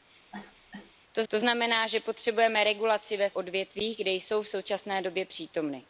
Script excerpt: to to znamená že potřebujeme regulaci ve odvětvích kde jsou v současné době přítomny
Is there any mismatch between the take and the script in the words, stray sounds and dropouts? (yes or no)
yes